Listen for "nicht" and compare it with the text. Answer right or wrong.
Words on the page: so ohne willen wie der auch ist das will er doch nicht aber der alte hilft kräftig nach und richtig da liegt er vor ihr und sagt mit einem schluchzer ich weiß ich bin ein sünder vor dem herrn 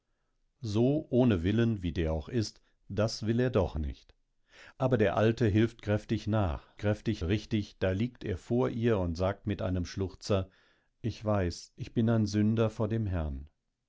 right